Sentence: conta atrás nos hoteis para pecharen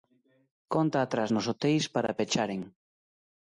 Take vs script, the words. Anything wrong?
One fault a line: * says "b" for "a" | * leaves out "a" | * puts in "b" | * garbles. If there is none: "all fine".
all fine